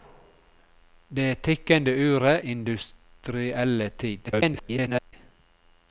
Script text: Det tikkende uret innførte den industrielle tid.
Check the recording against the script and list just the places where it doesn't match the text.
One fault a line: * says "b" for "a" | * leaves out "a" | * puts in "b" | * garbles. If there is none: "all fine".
* leaves out "innførte den"
* garbles